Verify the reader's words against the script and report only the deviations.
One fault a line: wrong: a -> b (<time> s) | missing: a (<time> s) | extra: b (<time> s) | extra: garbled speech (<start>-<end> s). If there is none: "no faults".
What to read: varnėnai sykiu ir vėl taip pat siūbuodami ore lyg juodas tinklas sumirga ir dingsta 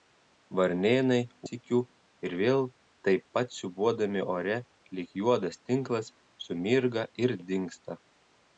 no faults